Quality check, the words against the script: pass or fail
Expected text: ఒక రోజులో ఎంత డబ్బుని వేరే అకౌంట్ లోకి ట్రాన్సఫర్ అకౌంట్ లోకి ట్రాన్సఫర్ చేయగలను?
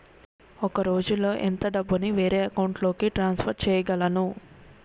fail